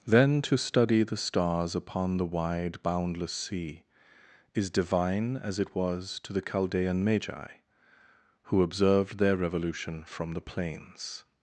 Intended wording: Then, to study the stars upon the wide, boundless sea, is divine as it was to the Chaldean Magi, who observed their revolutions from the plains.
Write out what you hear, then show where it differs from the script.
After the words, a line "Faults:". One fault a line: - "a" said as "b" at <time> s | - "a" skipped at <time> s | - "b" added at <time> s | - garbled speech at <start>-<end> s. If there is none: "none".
Then, to study the stars upon the wide, boundless sea, is divine as it was to the Chaldean Magi, who observed their revolution from the plains.
Faults:
- "revolutions" said as "revolution" at 9.3 s